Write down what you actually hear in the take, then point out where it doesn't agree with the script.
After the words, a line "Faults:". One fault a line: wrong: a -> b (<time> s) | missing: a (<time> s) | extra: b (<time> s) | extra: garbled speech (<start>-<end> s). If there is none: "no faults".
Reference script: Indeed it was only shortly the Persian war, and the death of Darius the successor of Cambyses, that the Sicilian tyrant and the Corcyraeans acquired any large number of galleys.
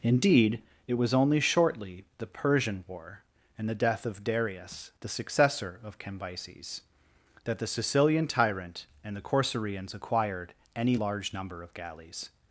Indeed it was only shortly the Persian war, and the death of Darius the successor of Cambyses, that the Sicilian tyrant and the Corcyraeans acquired any large number of galleys.
Faults:
no faults